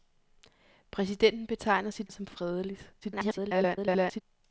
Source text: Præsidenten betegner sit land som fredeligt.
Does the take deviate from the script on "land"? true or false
true